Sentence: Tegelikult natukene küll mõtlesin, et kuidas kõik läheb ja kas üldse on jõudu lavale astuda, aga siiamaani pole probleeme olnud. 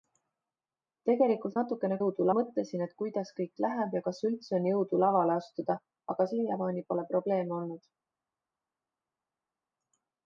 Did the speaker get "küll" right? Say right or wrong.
wrong